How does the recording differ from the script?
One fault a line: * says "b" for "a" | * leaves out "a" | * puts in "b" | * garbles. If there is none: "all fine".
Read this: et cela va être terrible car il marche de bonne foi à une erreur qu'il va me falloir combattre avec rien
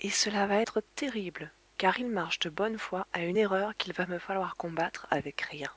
all fine